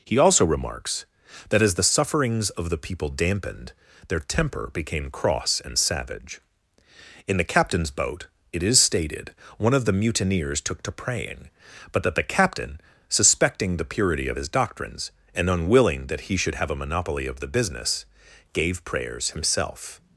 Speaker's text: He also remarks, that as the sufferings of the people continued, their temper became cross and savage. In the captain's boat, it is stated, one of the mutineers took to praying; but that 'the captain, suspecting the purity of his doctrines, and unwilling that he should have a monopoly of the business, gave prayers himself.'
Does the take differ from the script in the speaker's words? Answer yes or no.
yes